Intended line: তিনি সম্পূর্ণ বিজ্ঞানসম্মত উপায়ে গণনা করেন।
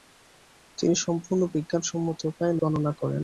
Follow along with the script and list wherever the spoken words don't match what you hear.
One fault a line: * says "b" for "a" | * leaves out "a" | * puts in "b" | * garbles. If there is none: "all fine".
all fine